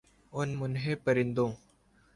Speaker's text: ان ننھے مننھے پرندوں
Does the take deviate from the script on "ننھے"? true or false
true